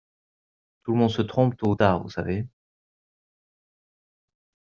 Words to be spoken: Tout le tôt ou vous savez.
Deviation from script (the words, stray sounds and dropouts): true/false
true